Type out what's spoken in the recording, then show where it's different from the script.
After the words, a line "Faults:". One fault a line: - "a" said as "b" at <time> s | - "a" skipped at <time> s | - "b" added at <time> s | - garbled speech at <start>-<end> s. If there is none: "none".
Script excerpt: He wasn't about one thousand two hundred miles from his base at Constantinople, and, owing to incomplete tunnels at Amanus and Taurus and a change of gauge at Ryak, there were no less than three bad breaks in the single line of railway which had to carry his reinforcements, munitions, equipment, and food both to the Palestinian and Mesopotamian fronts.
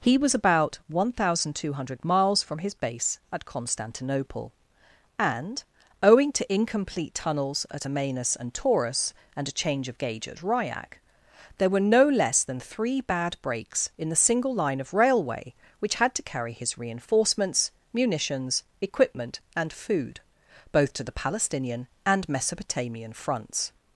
He was about one thousand two hundred miles from his base at Constantinople, and, owing to incomplete tunnels at Amanus and Taurus and a change of gauge at Ryak, there were no less than three bad breaks in the single line of railway which had to carry his reinforcements, munitions, equipment, and food both to the Palestinian and Mesopotamian fronts.
Faults:
- "wasn't" said as "was" at 0.2 s